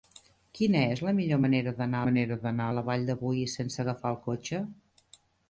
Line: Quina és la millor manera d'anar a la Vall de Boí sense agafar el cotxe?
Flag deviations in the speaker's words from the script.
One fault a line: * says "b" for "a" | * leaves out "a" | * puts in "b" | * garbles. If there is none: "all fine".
* puts in "manera d'anar"